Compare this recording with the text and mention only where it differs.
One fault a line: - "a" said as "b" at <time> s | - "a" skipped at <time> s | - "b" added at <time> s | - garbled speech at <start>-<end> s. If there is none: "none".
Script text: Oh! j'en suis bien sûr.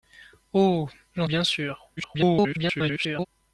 - "suis" skipped at 1.3 s
- garbled speech at 2.0-3.3 s